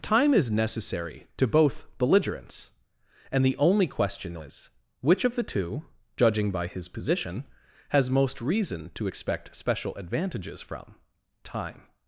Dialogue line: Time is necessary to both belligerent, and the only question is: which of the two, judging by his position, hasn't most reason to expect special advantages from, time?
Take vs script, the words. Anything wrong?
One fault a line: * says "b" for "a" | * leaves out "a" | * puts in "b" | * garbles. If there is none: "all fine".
* says "belligerents" for "belligerent"
* says "has" for "hasn't"